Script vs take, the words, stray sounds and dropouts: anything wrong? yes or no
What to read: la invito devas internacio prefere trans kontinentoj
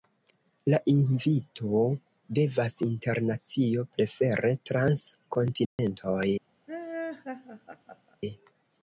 yes